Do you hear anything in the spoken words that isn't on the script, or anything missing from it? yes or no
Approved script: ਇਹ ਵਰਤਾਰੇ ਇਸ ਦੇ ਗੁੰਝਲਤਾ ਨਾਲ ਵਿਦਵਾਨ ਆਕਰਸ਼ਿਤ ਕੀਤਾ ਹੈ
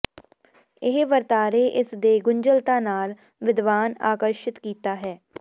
no